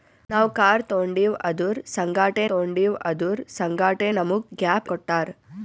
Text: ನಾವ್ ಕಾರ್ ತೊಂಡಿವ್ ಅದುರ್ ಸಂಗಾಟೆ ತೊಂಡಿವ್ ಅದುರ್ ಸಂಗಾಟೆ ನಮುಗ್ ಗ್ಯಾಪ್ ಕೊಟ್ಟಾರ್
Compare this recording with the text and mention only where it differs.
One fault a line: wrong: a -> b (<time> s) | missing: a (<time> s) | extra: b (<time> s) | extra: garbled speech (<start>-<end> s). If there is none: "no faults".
no faults